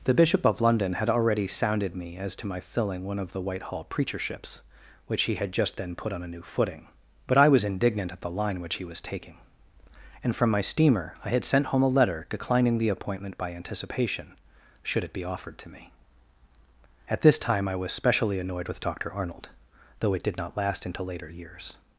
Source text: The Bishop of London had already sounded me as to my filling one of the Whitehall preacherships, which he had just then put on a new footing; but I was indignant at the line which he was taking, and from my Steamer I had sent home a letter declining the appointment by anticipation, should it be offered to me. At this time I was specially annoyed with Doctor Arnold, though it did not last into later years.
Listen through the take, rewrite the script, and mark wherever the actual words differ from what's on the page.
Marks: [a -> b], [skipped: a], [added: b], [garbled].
The Bishop of London had already sounded me as to my filling one of the Whitehall preacherships, which he had just then put on a new footing; but I was indignant at the line which he was taking, and from my Steamer I had sent home a letter declining the appointment by anticipation, should it be offered to me. At this time I was specially annoyed with Doctor Arnold, though it did not last into later years.